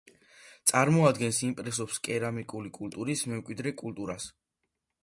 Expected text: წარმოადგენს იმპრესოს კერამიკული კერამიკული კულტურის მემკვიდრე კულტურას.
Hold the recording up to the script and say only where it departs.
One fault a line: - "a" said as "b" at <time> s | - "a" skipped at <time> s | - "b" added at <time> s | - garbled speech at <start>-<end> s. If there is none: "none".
- "კერამიკული" skipped at 2.7 s